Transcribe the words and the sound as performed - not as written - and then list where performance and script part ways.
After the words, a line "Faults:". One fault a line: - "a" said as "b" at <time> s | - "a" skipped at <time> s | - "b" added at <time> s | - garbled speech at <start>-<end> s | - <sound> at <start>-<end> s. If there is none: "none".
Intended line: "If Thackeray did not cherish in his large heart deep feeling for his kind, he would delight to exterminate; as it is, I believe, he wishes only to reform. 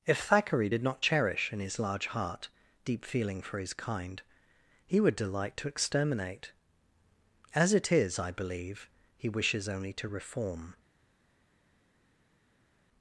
"If Thackeray did not cherish in his large heart deep feeling for his kind, he would delight to exterminate; as it is, I believe, he wishes only to reform.
Faults:
none